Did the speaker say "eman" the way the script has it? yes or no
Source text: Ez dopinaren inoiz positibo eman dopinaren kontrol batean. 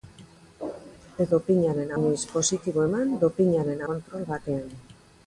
yes